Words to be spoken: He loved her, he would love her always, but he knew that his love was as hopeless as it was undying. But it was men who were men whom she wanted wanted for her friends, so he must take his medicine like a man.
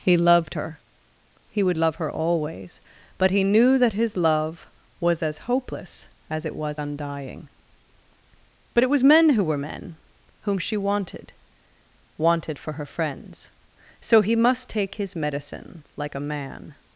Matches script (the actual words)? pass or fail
pass